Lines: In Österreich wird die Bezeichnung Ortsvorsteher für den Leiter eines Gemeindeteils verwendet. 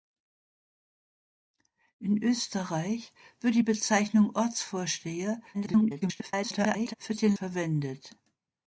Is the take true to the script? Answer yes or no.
no